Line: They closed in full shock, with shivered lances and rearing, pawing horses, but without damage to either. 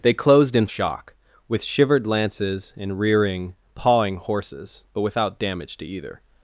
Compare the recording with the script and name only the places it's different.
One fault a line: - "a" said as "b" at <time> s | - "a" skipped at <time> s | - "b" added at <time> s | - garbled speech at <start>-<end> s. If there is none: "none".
- "full" skipped at 0.7 s